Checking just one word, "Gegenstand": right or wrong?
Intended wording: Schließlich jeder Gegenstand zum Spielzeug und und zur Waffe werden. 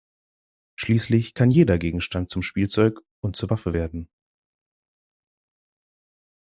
right